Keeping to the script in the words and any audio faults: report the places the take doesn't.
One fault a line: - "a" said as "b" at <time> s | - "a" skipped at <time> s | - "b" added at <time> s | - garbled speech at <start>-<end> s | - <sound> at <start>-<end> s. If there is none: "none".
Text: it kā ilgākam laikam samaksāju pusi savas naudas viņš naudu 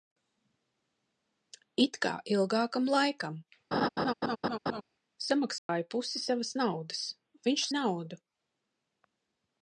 - laugh at 3.7-4.8 s
- dropout at 5.6-5.7 s